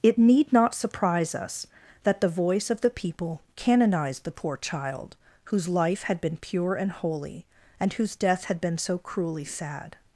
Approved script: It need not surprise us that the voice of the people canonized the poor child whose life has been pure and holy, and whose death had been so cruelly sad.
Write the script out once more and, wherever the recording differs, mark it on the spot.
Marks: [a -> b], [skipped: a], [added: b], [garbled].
It need not surprise us that the voice of the people canonized the poor child whose life [has -> had] been pure and holy, and whose death had been so cruelly sad.